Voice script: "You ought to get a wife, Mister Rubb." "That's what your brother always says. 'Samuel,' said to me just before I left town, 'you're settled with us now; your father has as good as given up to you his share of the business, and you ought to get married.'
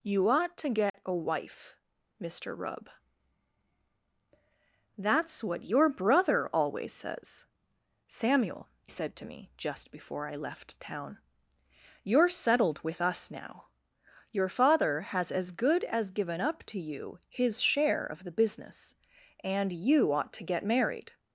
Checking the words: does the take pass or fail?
pass